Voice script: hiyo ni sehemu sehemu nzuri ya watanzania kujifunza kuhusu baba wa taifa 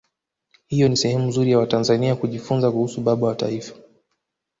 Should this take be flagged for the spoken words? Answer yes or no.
yes